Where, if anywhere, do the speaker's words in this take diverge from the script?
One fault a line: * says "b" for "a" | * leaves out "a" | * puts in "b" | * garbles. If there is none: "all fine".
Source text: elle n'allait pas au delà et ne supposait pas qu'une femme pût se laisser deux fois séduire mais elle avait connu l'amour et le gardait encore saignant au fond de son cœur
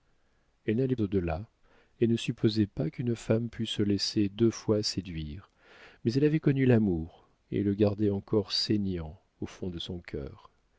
* leaves out "pas"